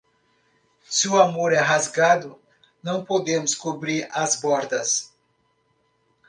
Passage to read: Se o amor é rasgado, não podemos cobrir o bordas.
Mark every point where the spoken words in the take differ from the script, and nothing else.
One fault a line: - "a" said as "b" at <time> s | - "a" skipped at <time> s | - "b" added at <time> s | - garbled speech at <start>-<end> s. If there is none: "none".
- "o" said as "as" at 4.1 s